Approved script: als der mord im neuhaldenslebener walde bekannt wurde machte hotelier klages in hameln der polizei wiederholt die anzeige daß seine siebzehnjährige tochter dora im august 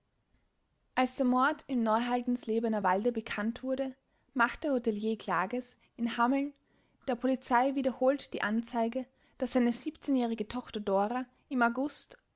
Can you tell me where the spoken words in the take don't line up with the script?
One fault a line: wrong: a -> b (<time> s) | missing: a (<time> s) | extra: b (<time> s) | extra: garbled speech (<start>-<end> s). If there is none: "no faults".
no faults